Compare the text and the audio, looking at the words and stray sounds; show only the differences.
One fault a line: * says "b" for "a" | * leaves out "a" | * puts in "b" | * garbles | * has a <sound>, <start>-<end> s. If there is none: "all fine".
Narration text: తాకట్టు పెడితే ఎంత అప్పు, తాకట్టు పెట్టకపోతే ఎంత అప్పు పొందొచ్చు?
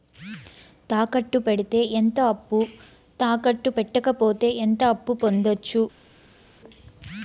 all fine